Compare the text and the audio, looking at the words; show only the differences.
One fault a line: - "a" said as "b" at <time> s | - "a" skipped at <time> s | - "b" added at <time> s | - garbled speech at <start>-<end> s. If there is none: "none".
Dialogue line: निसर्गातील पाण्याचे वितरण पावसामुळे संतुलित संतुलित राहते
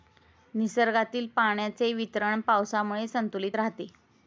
- "संतुलित" skipped at 3.6 s